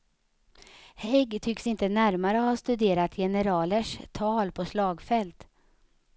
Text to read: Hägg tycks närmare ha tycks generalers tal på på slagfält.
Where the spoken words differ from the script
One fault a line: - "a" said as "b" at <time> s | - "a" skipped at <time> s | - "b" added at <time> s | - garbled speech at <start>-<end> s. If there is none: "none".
- "inte" added at 1.7 s
- "tycks" said as "studerat" at 2.6 s
- "på" skipped at 4.7 s